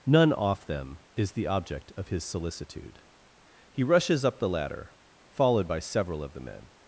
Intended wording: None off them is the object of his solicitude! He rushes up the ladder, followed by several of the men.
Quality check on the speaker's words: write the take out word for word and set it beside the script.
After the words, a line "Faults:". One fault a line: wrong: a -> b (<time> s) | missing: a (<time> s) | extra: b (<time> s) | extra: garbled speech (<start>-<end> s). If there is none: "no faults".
None off them is the object of his solicitude! He rushes up the ladder, followed by several of the men.
Faults:
no faults